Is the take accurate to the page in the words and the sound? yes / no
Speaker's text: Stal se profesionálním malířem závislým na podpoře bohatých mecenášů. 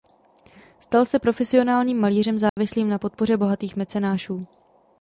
no